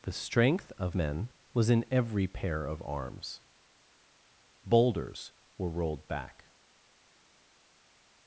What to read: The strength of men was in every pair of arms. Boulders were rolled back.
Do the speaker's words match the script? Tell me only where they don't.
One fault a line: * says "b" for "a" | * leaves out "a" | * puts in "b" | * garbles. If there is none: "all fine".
all fine